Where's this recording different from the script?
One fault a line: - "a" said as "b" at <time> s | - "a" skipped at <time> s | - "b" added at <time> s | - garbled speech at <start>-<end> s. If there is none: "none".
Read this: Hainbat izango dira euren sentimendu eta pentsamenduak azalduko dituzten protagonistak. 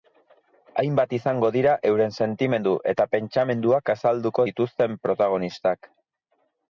none